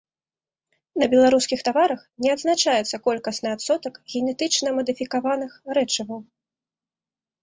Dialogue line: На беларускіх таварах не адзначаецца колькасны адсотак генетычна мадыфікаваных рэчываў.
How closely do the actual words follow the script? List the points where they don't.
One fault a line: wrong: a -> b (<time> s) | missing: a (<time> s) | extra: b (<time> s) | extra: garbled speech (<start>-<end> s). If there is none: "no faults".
no faults